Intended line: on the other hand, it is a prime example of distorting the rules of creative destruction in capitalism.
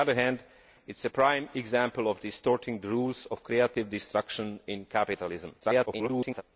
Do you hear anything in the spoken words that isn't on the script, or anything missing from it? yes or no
yes